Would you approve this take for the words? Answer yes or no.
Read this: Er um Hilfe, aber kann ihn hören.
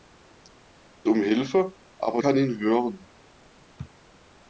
yes